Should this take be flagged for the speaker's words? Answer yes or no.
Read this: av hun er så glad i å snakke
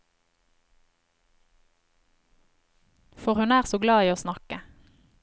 yes